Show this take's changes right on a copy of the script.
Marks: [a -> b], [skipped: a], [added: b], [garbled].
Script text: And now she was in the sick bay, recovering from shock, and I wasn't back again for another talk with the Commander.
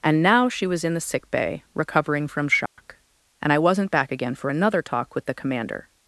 And now she was in the sick bay, recovering from shock, and I wasn't back again for another talk with the Commander.